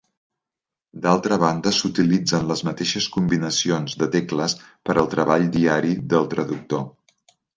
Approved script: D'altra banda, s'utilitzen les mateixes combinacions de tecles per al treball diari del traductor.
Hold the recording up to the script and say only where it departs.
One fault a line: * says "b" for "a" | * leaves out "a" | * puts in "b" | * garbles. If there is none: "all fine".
all fine